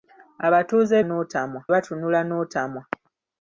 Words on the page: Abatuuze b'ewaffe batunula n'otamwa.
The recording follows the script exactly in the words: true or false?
false